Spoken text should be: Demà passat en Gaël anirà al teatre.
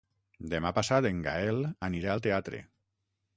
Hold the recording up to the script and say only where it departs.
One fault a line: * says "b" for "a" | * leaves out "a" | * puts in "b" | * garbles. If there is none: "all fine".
all fine